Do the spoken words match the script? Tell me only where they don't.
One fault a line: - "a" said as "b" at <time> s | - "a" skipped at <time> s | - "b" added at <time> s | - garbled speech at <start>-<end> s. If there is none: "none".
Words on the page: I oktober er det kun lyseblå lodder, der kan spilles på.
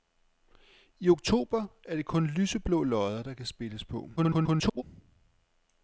- garbled speech at 4.2-4.8 s